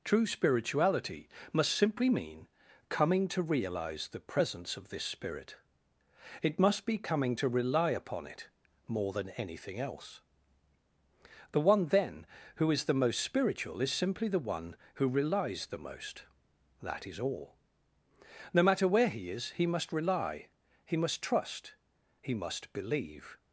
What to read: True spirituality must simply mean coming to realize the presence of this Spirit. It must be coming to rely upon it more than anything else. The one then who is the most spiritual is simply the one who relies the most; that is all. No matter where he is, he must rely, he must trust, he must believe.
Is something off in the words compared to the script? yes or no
no